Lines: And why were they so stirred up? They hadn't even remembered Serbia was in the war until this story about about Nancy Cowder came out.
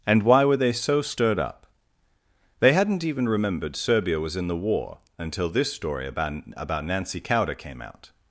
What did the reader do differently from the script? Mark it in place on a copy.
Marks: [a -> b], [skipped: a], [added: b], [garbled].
And why were they so stirred up? They hadn't even remembered Serbia was in the war until this story about about Nancy Cowder came out.